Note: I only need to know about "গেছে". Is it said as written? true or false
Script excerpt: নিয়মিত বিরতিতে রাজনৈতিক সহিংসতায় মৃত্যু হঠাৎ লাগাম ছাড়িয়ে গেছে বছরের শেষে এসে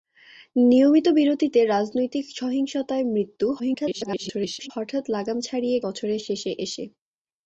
false